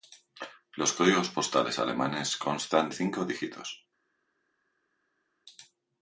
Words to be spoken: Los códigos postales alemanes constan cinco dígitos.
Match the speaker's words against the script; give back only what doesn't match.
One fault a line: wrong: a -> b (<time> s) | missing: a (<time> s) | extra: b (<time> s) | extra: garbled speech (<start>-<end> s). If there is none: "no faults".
no faults